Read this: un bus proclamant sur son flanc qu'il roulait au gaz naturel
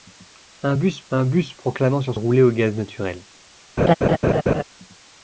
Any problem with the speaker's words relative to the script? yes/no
yes